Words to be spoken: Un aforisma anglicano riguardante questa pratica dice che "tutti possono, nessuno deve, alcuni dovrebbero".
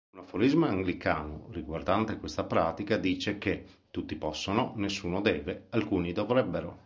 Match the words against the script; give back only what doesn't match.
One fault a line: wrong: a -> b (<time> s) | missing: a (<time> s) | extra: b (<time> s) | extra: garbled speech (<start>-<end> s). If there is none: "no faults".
no faults